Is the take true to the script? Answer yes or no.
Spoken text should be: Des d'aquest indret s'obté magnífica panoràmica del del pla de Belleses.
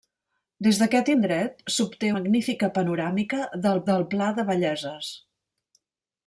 yes